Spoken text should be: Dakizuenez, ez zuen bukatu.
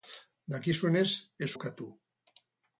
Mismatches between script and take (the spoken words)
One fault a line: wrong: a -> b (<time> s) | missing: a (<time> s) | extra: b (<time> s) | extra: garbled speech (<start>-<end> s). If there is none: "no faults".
missing: zuen (1.5 s)